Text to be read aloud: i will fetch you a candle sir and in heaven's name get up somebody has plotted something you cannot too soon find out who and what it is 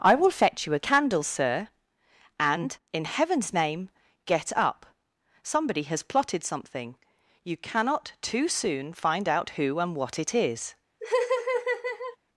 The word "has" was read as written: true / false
true